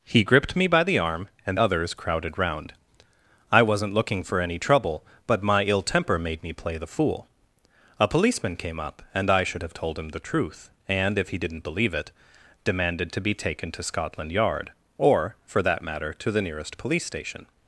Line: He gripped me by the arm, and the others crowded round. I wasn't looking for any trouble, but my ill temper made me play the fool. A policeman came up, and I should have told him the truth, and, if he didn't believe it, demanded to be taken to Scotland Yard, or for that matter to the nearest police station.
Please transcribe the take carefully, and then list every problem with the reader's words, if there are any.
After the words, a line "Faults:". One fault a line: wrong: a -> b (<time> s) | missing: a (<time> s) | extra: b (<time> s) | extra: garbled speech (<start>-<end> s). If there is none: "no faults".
He gripped me by the arm, and others crowded round. I wasn't looking for any trouble, but my ill temper made me play the fool. A policeman came up, and I should have told him the truth, and, if he didn't believe it, demanded to be taken to Scotland Yard, or for that matter to the nearest police station.
Faults:
missing: the (1.6 s)